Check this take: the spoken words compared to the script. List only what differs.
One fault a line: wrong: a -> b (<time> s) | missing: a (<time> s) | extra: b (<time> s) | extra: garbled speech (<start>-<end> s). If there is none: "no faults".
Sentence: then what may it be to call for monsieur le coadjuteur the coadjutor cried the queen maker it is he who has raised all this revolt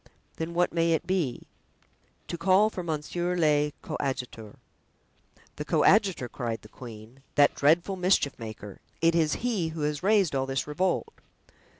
extra: that dreadful mischief (7.3 s)